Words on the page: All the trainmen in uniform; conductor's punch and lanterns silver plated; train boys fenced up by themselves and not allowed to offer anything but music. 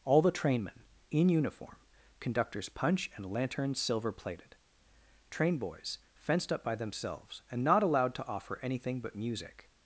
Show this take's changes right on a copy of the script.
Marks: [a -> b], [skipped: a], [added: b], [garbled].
All the trainmen in uniform; conductor's punch and lanterns silver plated; train boys fenced up by themselves and not allowed to offer anything but music.